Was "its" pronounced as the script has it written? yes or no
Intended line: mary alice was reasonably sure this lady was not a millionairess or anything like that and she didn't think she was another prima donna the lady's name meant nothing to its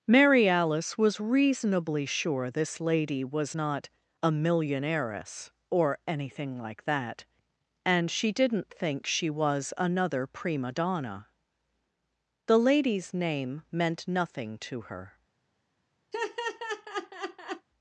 no